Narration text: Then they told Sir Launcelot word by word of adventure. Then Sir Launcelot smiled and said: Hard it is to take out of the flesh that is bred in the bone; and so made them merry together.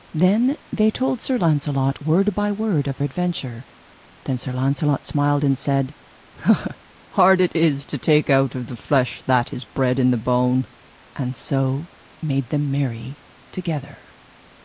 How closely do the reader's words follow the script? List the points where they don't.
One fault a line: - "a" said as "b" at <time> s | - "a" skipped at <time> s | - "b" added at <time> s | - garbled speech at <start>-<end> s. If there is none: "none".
none